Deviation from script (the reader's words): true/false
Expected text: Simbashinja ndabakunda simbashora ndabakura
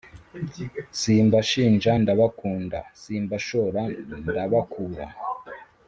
false